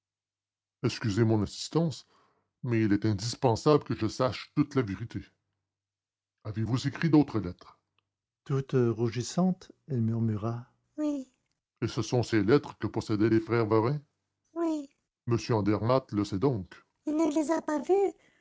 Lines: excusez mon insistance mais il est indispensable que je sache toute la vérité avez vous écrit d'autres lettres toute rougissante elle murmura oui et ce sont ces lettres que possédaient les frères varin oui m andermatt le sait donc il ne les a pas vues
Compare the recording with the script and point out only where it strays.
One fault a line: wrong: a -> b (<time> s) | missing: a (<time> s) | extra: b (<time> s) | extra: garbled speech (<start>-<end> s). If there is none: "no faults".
no faults